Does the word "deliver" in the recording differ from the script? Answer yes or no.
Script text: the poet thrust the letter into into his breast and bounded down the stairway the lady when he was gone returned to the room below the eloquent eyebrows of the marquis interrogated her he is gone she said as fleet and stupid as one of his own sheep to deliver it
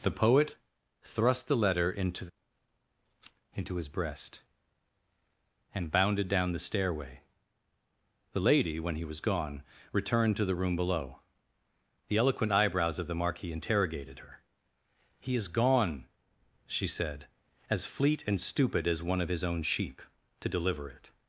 no